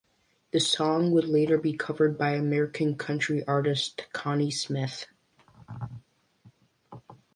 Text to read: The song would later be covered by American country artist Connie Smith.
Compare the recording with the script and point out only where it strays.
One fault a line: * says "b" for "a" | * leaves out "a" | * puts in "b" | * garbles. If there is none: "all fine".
all fine